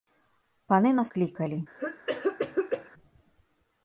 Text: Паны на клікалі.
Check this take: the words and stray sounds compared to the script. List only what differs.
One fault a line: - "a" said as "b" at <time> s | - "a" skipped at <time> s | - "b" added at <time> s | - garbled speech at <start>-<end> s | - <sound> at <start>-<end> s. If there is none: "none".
- cough at 1.8-2.9 s